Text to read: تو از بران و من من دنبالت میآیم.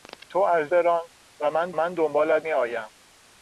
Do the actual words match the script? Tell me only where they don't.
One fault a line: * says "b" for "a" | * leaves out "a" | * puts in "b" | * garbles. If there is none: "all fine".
all fine